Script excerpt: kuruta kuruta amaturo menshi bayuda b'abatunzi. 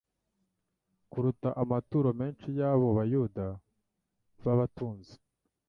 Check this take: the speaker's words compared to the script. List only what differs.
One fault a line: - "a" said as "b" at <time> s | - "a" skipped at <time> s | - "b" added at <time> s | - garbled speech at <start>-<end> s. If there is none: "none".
- "kuruta" skipped at 1.5 s
- "y'abo" added at 2.6 s